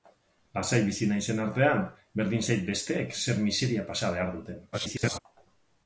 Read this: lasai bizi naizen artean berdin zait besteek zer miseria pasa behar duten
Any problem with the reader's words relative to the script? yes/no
yes